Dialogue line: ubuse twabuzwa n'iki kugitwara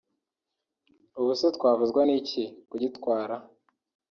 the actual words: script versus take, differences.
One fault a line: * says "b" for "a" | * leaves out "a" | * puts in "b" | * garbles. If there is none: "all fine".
all fine